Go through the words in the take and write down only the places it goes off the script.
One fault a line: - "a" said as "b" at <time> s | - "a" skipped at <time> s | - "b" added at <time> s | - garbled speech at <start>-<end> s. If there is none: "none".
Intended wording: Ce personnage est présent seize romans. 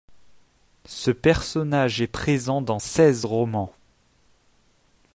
- "dans" added at 2.6 s